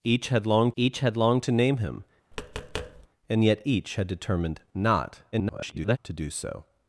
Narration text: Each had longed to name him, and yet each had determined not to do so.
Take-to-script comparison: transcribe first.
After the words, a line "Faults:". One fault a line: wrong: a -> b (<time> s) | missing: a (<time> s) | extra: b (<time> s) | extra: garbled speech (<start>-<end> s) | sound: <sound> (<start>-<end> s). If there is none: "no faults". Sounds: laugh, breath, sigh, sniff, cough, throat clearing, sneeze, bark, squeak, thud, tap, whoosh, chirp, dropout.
Each had longed each had longed to name him, and yet each had determined not [garbled] to do so.
Faults:
extra: each had longed (0.8 s)
sound: tap (2.3-3.1 s)
extra: garbled speech (5.3-6.0 s)